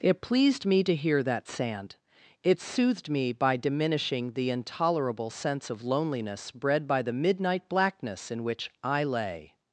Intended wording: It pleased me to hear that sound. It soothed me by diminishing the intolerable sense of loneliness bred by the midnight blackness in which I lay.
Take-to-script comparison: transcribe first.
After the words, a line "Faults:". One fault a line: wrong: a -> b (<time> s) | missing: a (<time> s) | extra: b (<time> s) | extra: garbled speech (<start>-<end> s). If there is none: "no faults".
It pleased me to hear that sand. It soothed me by diminishing the intolerable sense of loneliness bred by the midnight blackness in which I lay.
Faults:
wrong: sound -> sand (1.5 s)